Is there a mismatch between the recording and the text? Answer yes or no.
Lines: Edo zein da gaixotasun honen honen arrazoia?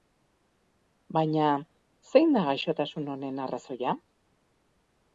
yes